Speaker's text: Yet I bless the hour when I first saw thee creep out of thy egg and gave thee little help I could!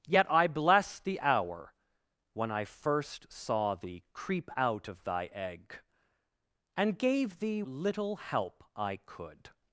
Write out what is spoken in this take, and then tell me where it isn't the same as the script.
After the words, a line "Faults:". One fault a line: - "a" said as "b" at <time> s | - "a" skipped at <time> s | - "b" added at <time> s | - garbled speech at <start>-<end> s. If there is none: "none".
Yet I bless the hour when I first saw thee creep out of thy egg and gave thee little help I could!
Faults:
none